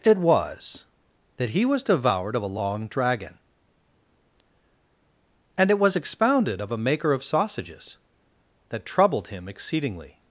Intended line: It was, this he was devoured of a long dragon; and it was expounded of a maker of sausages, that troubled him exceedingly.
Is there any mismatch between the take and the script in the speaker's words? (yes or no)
yes